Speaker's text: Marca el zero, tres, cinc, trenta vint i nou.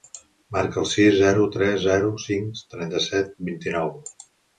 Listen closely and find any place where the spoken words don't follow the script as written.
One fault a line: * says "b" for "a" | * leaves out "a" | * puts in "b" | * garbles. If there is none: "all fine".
* puts in "sis"
* puts in "zero"
* puts in "set"